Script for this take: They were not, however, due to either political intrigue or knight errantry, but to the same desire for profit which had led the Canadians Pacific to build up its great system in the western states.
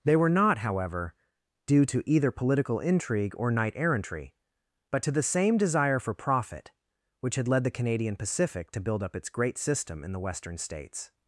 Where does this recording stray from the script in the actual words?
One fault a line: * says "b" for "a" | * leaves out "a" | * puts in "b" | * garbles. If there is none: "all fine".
* says "Canadian" for "Canadians"